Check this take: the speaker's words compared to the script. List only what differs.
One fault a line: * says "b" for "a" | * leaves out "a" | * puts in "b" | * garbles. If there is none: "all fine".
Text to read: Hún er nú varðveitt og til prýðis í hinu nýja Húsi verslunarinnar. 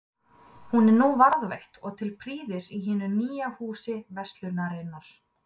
all fine